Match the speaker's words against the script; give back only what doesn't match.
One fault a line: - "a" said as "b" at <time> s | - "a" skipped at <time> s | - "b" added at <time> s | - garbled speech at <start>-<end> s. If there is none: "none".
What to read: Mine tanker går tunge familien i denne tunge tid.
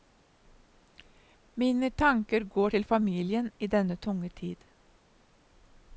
- "tunge" said as "til" at 2.7 s